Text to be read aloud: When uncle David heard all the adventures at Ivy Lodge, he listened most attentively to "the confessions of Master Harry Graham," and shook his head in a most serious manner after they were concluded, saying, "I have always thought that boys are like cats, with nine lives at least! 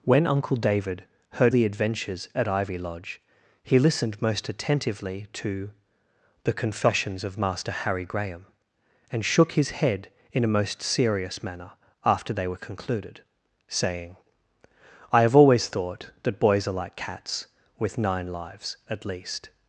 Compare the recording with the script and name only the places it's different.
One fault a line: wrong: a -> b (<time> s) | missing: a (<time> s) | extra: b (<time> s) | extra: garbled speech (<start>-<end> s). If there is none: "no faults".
missing: all (1.5 s)